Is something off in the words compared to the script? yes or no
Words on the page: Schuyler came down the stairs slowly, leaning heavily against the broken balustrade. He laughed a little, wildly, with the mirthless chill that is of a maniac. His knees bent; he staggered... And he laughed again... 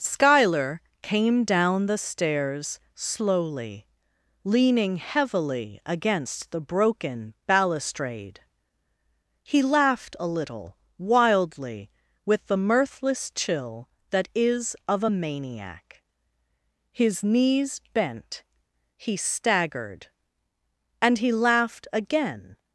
no